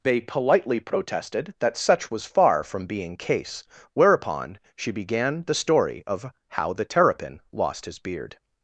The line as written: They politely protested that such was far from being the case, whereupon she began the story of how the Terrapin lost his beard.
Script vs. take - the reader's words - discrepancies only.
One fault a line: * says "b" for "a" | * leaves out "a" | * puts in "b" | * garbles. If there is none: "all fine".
* leaves out "the"